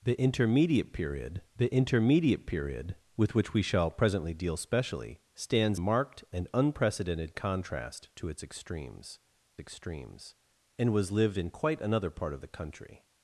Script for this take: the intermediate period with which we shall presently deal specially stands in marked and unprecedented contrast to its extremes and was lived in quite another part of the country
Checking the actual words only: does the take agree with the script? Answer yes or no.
no